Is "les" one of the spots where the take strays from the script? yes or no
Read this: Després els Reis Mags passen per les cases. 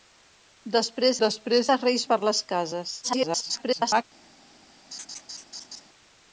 no